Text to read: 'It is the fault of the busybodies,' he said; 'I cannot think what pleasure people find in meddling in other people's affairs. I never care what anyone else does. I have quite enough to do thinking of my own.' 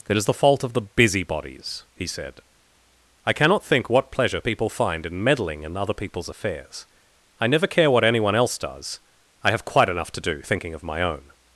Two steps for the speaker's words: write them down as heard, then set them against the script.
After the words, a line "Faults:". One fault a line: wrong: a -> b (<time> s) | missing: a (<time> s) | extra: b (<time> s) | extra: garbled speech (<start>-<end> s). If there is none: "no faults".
'It is the fault of the busybodies,' he said; 'I cannot think what pleasure people find in meddling in other people's affairs. I never care what anyone else does. I have quite enough to do thinking of my own.'
Faults:
no faults